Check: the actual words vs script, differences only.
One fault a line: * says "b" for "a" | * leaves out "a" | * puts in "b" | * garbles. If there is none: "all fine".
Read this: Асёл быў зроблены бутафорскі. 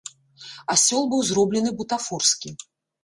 all fine